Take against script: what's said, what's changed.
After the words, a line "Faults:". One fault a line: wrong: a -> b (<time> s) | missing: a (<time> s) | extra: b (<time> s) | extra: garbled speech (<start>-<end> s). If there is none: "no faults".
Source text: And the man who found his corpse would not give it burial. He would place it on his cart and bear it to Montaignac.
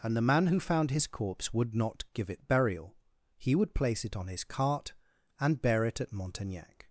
And the man who found his corpse would not give it burial. He would place it on his cart and bear it at Montaignac.
Faults:
wrong: to -> at (6.0 s)